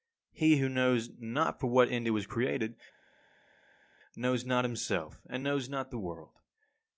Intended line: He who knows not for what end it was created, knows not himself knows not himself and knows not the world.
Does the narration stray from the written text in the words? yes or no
yes